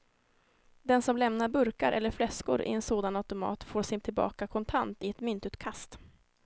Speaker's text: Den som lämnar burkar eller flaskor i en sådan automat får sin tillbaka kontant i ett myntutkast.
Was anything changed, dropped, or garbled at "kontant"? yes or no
no